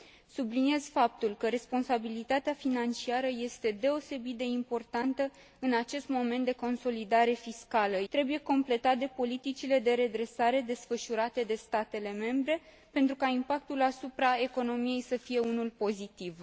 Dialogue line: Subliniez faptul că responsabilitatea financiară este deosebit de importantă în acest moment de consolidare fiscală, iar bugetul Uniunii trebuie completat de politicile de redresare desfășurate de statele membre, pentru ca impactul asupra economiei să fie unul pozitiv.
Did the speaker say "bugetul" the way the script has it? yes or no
no